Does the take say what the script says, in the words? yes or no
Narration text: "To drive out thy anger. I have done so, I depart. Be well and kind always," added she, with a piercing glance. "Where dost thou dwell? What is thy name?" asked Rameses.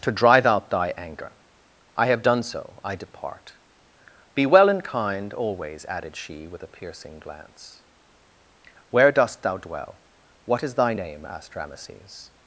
yes